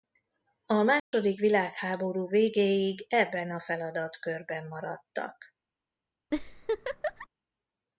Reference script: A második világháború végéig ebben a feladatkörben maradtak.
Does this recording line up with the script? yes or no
yes